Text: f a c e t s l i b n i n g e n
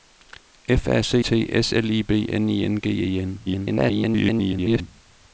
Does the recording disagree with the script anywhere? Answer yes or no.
yes